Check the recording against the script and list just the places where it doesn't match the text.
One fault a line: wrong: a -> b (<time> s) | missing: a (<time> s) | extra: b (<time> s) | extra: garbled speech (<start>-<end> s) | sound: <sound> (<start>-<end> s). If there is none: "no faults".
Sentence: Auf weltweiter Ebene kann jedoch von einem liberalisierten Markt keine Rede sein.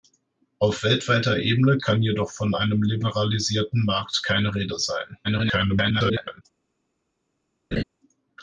extra: garbled speech (5.2-6.4 s)
sound: laugh (7.7-7.8 s)